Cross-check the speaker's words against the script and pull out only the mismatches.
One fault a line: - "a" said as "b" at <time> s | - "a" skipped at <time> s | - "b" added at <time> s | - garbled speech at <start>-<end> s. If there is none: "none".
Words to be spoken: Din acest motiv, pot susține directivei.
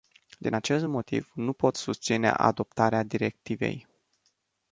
- "nu" added at 1.3 s
- "adoptarea" added at 2.3 s